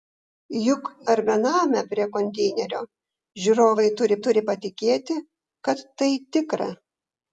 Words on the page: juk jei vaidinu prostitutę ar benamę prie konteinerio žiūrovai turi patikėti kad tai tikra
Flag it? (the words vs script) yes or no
yes